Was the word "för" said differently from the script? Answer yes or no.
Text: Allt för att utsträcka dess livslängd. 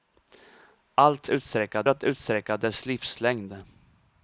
yes